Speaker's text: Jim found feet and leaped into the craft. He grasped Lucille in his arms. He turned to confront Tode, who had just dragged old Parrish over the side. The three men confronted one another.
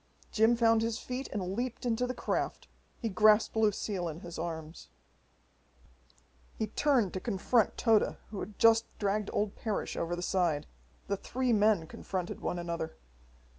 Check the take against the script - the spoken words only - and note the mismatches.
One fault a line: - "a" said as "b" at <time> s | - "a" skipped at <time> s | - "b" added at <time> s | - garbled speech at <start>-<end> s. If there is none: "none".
- "his" added at 0.8 s